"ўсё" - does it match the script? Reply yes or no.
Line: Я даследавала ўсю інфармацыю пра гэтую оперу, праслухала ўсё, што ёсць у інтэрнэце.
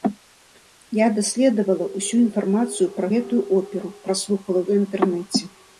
no